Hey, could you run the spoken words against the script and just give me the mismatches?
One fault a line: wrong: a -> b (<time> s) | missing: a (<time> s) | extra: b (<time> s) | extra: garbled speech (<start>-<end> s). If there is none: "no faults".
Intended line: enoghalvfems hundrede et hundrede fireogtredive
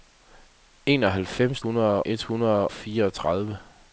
no faults